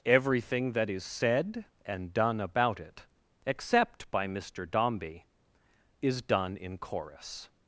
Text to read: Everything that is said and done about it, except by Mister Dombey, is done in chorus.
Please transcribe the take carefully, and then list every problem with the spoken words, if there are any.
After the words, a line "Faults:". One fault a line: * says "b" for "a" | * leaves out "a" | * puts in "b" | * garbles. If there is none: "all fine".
Everything that is said and done about it, except by Mister Dombey, is done in chorus.
Faults:
all fine